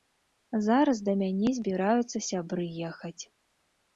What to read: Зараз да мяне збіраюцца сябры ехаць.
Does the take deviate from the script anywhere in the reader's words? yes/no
no